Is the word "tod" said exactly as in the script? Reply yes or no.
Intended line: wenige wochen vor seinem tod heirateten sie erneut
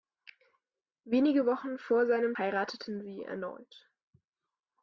no